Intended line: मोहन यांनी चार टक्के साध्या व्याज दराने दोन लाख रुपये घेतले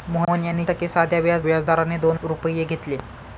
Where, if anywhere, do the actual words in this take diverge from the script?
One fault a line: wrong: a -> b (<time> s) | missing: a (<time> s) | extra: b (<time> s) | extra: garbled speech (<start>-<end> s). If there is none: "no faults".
missing: चार (0.6 s)
extra: व्याज (1.4 s)
missing: लाख (2.2 s)